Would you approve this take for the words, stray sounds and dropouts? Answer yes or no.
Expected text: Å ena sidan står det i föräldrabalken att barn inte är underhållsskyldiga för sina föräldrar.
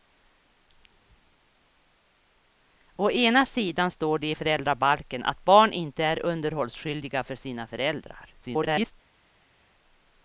no